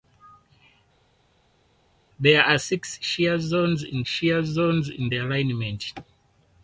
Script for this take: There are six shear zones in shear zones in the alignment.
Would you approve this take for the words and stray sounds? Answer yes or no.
yes